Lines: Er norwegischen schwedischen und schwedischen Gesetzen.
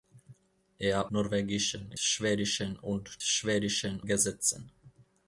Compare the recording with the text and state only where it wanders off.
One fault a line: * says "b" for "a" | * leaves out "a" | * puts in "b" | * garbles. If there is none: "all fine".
all fine